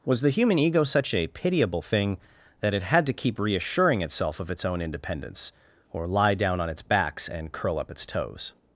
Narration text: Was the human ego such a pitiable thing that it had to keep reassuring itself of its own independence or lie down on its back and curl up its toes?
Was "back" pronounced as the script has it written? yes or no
no